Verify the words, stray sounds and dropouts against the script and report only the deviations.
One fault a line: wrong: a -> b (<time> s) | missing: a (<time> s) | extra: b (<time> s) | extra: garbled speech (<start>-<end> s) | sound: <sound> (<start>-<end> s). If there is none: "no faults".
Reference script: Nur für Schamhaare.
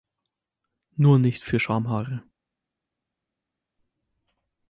extra: nicht (1.2 s)